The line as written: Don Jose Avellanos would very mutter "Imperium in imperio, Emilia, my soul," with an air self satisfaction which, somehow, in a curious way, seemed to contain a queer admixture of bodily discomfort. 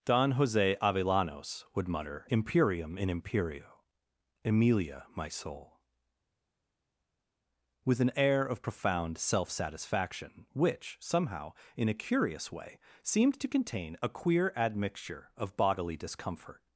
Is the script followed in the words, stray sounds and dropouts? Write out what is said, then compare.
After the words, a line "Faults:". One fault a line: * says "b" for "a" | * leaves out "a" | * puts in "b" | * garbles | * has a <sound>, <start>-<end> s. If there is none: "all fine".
Don Jose Avellanos would mutter "Imperium in imperio, Emilia, my soul," with an air of profound self satisfaction which, somehow, in a curious way, seemed to contain a queer admixture of bodily discomfort.
Faults:
* leaves out "very"
* puts in "of profound"